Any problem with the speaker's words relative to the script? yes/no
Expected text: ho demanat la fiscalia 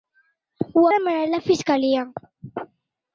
no